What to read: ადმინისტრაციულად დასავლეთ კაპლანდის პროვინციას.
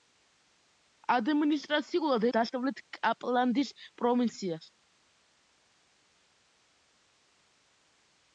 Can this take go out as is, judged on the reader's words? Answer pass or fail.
pass